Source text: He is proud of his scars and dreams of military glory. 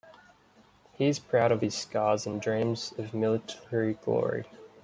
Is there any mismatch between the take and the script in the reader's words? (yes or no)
no